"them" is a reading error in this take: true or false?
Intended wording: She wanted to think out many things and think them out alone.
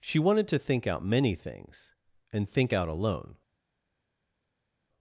true